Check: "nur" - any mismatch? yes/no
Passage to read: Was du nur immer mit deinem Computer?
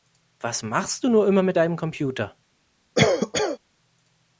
no